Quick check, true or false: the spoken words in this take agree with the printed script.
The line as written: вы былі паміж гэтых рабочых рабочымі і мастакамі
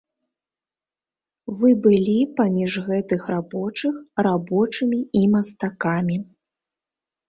true